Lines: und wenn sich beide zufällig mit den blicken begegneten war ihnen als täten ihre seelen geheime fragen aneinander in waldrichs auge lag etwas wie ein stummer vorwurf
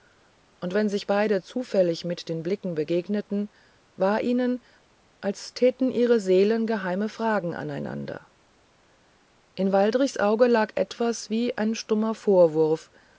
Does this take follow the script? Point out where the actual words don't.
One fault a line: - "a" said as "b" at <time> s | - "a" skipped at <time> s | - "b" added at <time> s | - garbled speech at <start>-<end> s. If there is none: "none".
none